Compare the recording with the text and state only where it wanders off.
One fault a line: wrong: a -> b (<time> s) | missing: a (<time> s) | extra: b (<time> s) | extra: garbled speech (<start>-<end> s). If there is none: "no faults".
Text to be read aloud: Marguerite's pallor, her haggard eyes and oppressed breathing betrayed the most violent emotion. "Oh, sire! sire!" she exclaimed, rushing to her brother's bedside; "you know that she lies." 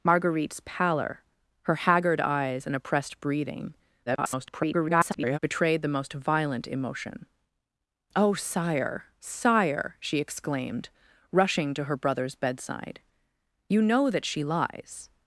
extra: garbled speech (4.1-5.4 s)